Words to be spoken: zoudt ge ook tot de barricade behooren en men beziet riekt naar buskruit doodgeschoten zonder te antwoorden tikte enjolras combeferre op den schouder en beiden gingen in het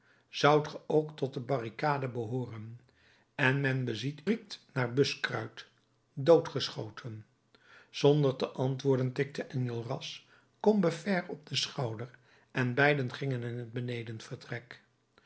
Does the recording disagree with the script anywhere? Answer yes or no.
no